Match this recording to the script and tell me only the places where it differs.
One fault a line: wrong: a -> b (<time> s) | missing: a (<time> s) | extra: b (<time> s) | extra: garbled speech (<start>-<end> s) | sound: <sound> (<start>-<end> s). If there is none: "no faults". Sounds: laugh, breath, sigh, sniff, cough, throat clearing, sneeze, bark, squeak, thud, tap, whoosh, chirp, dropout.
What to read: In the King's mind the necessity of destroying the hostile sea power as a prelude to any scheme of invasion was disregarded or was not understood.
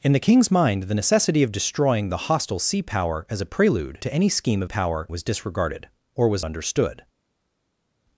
wrong: invasion -> power (4.6 s)
missing: not (6.4 s)